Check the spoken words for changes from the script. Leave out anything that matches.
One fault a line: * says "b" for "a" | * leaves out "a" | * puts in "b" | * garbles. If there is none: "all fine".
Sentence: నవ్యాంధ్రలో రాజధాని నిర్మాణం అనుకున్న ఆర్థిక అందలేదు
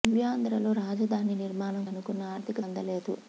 all fine